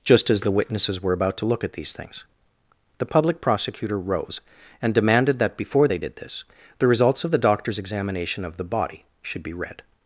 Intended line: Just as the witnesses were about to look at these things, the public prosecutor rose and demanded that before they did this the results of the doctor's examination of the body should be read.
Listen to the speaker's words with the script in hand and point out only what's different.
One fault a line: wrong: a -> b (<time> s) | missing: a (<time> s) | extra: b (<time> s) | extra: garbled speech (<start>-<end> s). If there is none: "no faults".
no faults